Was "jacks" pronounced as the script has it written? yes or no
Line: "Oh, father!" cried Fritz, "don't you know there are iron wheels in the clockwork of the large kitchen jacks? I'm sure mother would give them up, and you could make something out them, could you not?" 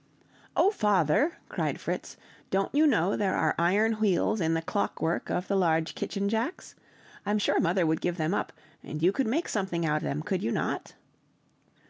yes